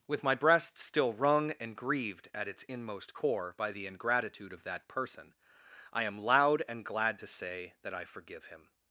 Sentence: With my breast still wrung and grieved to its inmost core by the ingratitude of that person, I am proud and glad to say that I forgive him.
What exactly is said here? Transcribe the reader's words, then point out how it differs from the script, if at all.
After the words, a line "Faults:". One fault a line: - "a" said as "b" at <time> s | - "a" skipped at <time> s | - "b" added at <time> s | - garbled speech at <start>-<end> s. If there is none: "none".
With my breast still wrung and grieved at its inmost core by the ingratitude of that person, I am loud and glad to say that I forgive him.
Faults:
- "to" said as "at" at 2.3 s
- "proud" said as "loud" at 6.2 s